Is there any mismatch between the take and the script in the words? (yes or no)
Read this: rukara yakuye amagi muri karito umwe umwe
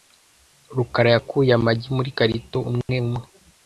no